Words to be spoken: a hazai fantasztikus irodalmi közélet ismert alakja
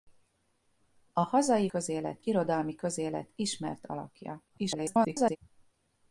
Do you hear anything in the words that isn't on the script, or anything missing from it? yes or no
yes